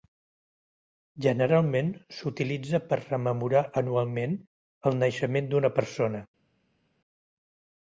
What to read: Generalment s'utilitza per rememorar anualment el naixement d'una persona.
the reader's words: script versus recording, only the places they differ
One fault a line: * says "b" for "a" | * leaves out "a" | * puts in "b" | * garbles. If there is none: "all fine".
all fine